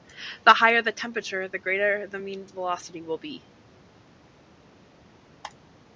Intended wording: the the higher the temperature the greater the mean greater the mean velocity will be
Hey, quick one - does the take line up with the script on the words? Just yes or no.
no